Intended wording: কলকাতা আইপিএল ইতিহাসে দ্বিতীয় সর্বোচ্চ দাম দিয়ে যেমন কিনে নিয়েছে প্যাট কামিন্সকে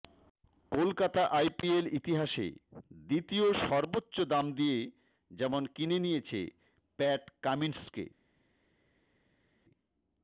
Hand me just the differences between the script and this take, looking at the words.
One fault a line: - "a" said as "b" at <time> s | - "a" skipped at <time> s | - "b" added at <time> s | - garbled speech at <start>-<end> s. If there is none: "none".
none